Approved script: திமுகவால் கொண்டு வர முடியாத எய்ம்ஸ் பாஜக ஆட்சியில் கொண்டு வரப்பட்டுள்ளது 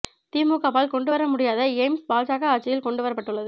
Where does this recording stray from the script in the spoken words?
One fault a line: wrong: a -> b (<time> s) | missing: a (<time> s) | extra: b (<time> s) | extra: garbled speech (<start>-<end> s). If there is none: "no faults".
no faults